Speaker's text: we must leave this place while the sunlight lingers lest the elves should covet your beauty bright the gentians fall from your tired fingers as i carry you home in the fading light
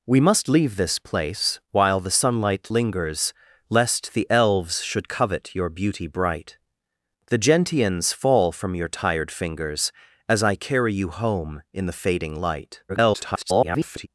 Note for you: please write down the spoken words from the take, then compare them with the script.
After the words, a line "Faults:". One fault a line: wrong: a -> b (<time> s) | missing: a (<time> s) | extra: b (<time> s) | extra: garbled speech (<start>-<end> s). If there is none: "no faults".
we must leave this place while the sunlight lingers lest the elves should covet your beauty bright the gentians fall from your tired fingers as i carry you home in the fading light [garbled]
Faults:
extra: garbled speech (12.9-14.1 s)